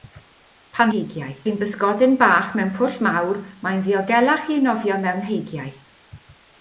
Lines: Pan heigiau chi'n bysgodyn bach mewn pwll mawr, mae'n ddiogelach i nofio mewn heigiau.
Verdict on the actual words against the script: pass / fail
pass